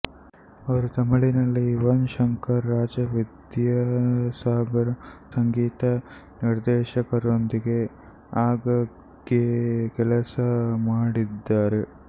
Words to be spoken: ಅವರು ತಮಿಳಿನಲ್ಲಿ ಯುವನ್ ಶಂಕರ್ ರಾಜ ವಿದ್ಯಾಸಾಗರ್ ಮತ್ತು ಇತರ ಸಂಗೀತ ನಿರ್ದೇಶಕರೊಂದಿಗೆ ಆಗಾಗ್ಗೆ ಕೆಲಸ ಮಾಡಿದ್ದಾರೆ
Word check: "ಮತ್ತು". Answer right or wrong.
wrong